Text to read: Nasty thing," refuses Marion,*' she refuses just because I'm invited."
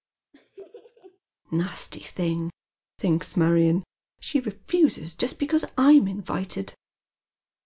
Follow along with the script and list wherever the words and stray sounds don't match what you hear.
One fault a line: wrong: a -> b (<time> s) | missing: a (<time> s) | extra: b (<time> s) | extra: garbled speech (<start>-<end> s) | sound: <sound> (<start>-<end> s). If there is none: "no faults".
sound: laugh (0.3-1.2 s)
wrong: refuses -> thinks (3.0 s)